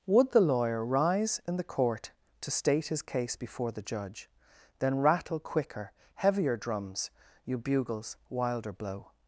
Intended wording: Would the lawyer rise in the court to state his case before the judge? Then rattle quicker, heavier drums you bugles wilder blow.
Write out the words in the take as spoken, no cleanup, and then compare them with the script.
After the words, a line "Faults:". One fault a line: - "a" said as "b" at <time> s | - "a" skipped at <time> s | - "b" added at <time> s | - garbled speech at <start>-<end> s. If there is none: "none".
Would the lawyer rise in the court to state his case before the judge? Then rattle quicker, heavier drums you bugles wilder blow.
Faults:
none